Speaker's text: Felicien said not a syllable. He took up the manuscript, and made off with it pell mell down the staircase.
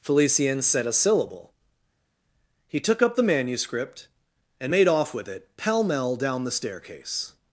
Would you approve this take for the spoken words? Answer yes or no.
no